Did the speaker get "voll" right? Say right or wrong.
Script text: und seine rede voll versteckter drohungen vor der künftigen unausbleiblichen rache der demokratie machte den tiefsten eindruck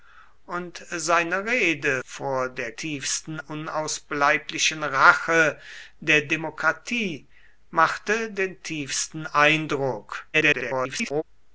wrong